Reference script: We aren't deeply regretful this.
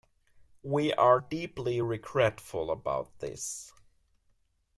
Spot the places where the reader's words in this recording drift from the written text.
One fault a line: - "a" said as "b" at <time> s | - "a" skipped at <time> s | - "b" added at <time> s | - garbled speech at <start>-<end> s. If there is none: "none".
- "aren't" said as "are" at 0.9 s
- "about" added at 2.7 s